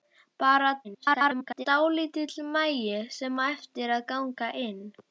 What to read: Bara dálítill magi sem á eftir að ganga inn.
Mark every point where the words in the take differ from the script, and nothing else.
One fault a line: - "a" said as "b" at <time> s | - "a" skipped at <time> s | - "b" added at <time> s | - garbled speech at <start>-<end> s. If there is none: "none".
- garbled speech at 0.8-1.7 s